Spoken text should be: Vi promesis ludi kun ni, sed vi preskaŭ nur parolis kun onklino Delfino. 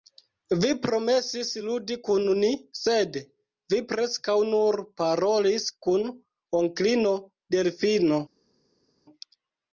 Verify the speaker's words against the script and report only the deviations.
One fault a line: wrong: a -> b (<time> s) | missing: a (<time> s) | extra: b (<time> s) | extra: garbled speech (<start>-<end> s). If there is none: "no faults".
no faults